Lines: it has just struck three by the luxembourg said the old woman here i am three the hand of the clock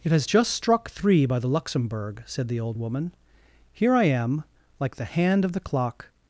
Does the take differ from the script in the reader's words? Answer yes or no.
yes